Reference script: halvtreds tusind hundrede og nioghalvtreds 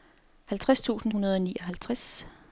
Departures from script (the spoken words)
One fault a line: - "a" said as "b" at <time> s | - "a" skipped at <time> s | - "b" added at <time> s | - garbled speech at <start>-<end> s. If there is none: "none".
none